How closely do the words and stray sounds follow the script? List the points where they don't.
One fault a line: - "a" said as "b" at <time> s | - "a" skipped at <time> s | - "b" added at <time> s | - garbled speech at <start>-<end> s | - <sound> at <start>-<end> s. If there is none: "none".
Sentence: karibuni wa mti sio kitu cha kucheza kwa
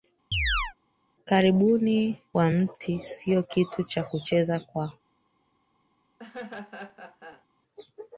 - chirp at 0.3-0.7 s
- laugh at 6.2-7.5 s